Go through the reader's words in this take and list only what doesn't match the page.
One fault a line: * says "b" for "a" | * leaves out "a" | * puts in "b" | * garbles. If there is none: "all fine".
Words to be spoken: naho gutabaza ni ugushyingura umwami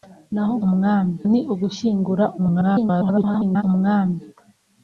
* says "umwami" for "gutabaza"
* garbles